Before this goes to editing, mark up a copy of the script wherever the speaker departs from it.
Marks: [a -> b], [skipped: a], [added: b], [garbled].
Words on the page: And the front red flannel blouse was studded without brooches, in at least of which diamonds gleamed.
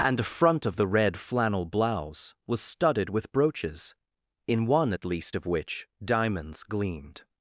And the front [added: of the] red flannel blouse was studded [without -> with] brooches, in [added: one] at least of which diamonds gleamed.